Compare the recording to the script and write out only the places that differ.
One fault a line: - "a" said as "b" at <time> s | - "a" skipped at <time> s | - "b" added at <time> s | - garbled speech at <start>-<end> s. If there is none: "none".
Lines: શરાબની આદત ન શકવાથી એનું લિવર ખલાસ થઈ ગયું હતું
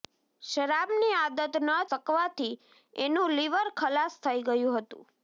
none